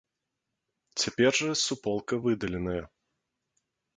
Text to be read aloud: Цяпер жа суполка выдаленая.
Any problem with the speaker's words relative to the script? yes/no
no